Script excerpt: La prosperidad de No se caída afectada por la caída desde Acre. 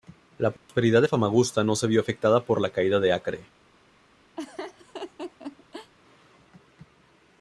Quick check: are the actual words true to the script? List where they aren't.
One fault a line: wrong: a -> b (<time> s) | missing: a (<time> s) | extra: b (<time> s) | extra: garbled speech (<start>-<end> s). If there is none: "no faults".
extra: Famagusta (1.1 s)
wrong: caída -> vio (1.9 s)
wrong: desde -> de (3.0 s)